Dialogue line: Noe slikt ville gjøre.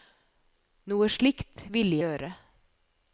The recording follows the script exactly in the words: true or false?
true